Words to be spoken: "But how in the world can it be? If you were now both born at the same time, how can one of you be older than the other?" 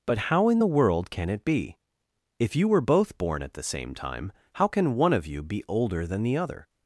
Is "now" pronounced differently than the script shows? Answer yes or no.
yes